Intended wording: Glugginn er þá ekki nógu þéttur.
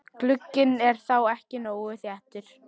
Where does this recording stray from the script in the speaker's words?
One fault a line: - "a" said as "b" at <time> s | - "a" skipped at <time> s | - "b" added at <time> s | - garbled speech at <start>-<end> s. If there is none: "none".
none